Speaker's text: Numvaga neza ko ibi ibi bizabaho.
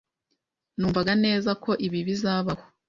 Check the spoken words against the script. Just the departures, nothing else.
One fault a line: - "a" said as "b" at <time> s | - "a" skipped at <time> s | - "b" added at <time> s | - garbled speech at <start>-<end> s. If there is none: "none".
- "ibi" skipped at 2.0 s